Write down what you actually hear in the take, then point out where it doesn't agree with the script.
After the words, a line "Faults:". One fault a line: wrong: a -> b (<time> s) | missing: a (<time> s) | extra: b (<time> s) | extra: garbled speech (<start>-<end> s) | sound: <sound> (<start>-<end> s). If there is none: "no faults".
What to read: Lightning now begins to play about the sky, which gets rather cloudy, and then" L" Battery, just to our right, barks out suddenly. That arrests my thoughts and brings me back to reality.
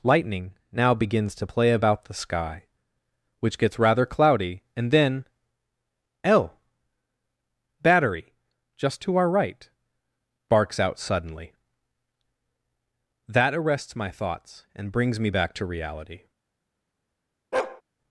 Lightning now begins to play about the sky, which gets rather cloudy, and then" L" Battery, just to our right, barks out suddenly. That arrests my thoughts and brings me back to reality.
Faults:
sound: bark (17.5-17.8 s)